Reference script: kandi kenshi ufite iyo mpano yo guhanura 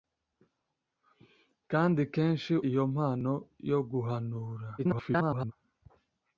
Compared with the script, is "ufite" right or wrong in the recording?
wrong